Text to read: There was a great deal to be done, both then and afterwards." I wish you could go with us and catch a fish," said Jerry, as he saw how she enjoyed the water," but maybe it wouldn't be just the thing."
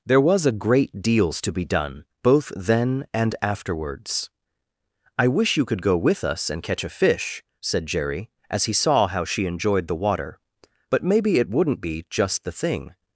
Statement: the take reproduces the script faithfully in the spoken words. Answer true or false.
false